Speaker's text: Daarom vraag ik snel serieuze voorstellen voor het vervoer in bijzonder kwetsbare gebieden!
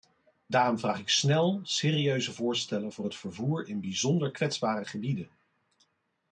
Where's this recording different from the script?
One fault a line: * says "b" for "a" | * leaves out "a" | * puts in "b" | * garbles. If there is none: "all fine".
all fine